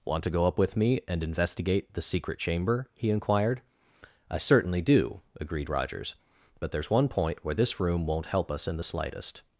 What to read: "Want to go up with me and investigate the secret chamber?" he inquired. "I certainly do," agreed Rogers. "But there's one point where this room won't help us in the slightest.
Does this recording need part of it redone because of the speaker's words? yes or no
no